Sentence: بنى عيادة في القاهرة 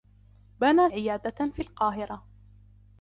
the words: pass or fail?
pass